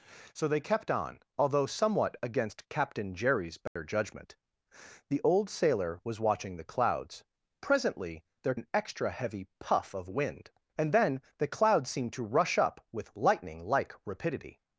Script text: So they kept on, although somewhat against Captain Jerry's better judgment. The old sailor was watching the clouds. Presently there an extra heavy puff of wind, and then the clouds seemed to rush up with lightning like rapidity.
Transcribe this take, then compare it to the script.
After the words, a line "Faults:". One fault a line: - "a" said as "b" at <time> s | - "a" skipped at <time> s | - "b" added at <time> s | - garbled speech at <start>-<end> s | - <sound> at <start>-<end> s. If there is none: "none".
So they kept on, although somewhat against Captain Jerry's better judgment. The old sailor was watching the clouds. Presently there an extra heavy puff of wind, and then the clouds seemed to rush up with lightning like rapidity.
Faults:
- dropout at 3.7-3.8 s